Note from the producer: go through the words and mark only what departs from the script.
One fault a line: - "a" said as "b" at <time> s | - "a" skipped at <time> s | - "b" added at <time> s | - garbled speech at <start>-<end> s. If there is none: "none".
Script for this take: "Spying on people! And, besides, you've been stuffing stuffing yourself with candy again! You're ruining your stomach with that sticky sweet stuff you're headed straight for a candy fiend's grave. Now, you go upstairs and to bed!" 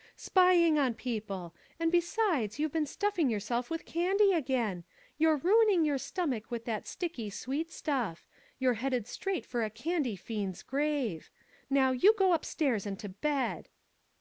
- "stuffing" skipped at 3.3 s